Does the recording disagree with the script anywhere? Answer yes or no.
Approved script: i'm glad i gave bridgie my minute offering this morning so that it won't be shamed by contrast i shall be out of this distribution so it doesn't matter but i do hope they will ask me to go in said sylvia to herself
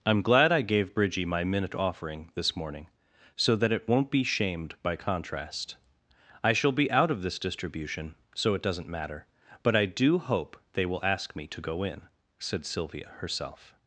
yes